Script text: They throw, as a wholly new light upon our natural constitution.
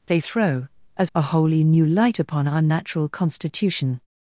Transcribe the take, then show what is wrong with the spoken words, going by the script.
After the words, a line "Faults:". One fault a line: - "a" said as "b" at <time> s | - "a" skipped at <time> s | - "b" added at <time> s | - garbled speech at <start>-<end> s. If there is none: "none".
They throw, as a wholly new light upon our natural constitution.
Faults:
none